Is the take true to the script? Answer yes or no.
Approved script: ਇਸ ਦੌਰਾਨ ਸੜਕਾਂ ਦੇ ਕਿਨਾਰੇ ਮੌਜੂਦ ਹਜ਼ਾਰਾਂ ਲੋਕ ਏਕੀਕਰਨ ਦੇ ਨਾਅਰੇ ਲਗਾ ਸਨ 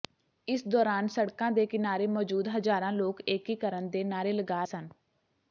yes